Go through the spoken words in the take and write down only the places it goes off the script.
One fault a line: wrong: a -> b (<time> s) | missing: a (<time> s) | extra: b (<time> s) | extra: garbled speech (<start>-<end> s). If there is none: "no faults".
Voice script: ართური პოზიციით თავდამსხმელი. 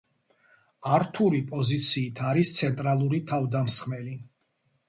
extra: არის ცენტრალური (2.3 s)